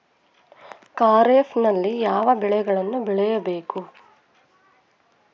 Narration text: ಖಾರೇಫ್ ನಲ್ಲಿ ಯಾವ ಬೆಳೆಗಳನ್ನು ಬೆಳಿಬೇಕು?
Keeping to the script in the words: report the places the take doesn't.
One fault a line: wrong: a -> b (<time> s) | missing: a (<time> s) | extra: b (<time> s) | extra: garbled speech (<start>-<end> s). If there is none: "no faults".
no faults